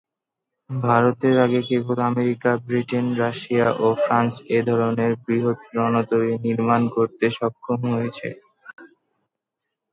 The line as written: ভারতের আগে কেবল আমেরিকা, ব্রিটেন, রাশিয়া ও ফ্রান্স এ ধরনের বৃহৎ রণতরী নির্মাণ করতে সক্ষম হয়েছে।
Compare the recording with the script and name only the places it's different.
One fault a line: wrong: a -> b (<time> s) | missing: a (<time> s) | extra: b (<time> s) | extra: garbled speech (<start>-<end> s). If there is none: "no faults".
no faults